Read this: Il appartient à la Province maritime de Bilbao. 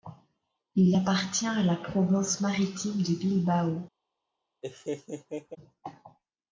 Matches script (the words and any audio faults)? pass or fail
fail